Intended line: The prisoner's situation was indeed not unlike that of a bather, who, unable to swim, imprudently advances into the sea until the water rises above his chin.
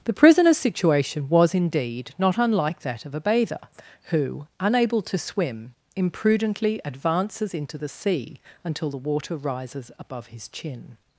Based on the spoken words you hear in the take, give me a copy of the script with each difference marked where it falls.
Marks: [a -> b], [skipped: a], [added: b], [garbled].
The prisoner's situation was indeed not unlike that of a bather, who, unable to swim, imprudently advances into the sea until the water rises above his chin.